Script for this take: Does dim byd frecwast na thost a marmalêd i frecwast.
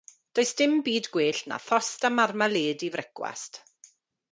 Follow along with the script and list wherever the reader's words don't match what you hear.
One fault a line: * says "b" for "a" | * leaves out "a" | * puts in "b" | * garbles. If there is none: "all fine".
* says "gwell" for "frecwast"